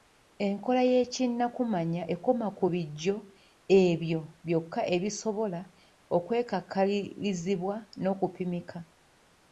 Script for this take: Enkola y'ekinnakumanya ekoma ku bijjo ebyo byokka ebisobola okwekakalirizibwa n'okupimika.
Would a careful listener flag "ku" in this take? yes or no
no